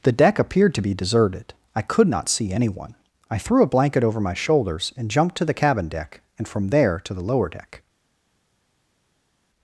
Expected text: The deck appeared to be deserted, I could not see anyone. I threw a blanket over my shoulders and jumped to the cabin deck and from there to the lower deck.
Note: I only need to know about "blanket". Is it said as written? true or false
true